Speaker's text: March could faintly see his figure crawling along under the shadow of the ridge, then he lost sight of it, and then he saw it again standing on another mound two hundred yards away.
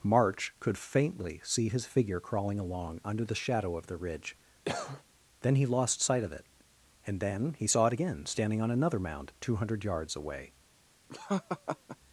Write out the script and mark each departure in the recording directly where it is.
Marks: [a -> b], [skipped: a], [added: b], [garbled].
March could faintly see his figure crawling along under the shadow of the ridge, then he lost sight of it, and then he saw it again standing on another mound two hundred yards away.